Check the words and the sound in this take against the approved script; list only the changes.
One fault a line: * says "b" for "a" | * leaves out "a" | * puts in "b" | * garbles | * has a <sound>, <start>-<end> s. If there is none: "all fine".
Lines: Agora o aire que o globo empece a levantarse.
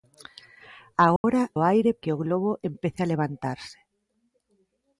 * has a dropout, 1.2-1.2 s